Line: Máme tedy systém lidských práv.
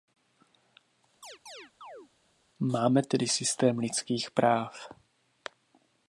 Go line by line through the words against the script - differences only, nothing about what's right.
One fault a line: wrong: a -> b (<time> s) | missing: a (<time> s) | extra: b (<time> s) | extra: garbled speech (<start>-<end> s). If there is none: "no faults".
no faults